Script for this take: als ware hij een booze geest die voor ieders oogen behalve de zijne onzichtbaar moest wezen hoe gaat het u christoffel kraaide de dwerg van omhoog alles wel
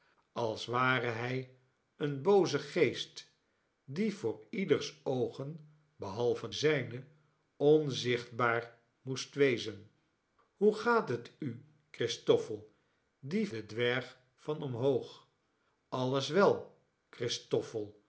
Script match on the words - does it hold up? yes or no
no